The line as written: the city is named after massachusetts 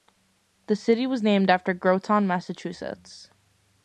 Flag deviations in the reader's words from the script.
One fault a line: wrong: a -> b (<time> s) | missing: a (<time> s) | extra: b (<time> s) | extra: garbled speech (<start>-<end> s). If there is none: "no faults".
wrong: is -> was (1.1 s)
extra: groton (1.8 s)